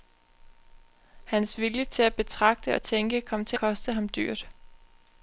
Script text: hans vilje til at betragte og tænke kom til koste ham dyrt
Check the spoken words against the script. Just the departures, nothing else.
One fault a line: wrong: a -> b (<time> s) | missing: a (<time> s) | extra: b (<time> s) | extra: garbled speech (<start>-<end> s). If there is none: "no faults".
no faults